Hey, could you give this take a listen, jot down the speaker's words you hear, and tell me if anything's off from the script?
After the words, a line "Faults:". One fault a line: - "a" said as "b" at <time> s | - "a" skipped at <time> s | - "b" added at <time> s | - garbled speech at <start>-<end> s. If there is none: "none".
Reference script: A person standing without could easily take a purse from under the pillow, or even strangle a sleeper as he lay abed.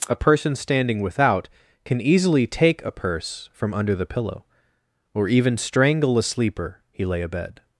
A person standing without can easily take a purse from under the pillow, or even strangle a sleeper he lay abed.
Faults:
- "could" said as "can" at 1.9 s
- "as" skipped at 6.8 s